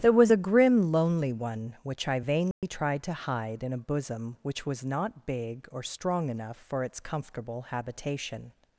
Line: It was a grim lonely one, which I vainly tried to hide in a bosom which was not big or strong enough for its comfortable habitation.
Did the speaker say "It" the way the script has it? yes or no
no